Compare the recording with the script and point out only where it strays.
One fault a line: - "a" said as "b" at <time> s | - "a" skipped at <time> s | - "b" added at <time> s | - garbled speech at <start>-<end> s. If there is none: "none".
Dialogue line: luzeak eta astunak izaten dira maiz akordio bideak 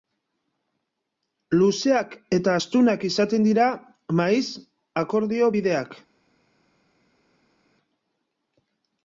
none